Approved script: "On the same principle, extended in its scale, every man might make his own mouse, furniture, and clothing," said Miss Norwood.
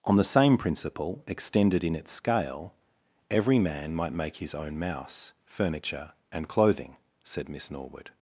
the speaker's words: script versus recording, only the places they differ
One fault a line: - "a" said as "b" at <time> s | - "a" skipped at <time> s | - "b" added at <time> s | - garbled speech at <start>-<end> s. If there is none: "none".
none